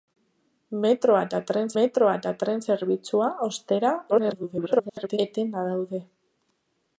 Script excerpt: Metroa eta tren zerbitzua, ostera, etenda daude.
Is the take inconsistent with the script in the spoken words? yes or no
yes